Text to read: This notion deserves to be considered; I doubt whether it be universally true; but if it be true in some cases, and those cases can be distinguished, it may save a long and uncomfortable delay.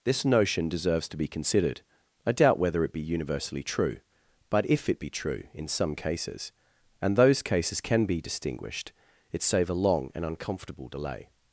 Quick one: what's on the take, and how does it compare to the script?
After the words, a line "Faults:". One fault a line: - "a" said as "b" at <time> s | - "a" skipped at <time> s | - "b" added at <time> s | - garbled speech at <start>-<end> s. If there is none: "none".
This notion deserves to be considered; I doubt whether it be universally true; but if it be true in some cases, and those cases can be distinguished, it save a long and uncomfortable delay.
Faults:
- "may" skipped at 9.4 s